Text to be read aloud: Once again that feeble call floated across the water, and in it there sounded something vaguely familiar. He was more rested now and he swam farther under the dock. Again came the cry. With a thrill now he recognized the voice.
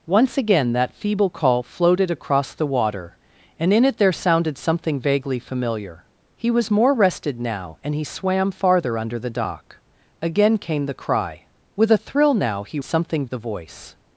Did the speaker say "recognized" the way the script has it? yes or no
no